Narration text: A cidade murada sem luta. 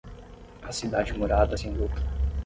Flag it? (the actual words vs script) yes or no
no